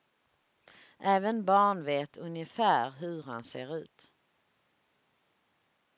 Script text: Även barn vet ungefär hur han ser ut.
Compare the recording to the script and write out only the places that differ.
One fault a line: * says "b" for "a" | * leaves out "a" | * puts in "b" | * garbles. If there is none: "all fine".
all fine